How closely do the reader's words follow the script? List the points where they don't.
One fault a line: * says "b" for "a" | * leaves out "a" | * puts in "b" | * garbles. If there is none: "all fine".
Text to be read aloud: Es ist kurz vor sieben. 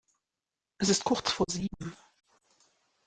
all fine